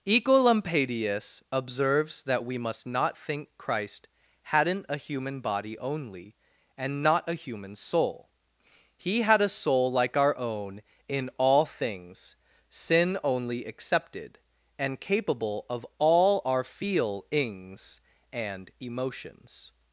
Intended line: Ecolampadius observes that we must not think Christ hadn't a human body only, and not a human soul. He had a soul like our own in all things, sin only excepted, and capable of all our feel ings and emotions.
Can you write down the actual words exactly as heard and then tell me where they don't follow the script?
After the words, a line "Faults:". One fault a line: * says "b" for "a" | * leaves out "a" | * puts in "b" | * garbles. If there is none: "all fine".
Ecolampadius observes that we must not think Christ hadn't a human body only, and not a human soul. He had a soul like our own in all things, sin only excepted, and capable of all our feel ings and emotions.
Faults:
all fine